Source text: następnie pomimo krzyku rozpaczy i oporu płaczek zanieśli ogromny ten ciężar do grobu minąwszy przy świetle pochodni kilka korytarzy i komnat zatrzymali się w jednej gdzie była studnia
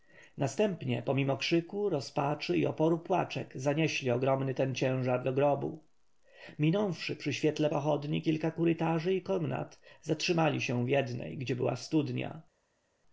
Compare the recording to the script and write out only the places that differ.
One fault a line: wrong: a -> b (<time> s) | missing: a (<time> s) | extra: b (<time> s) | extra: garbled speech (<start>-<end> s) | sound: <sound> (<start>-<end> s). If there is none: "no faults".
no faults